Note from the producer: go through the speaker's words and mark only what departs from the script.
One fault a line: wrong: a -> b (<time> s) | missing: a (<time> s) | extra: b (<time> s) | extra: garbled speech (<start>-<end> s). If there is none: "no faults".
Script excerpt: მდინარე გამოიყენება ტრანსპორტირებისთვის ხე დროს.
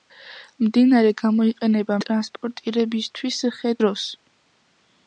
no faults